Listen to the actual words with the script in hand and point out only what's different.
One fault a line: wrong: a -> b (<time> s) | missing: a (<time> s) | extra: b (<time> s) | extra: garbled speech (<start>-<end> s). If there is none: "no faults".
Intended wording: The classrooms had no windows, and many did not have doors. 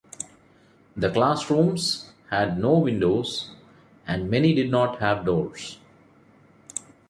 no faults